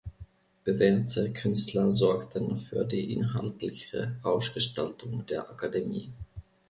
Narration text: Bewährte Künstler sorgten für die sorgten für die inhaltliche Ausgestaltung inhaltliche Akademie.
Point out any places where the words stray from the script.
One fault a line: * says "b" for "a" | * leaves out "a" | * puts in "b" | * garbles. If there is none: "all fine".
* leaves out "sorgten für die"
* says "der" for "inhaltliche"